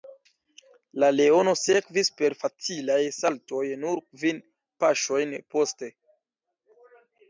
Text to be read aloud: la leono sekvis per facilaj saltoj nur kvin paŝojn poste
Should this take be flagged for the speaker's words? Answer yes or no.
no